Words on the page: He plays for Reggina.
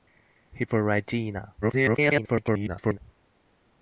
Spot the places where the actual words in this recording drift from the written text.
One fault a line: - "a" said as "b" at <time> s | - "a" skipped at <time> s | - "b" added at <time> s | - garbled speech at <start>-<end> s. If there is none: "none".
- "plays" skipped at 0.7 s
- garbled speech at 1.6-3.0 s